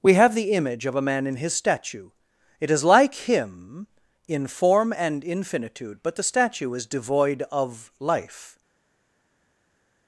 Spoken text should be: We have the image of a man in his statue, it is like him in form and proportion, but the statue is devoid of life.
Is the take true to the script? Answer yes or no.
no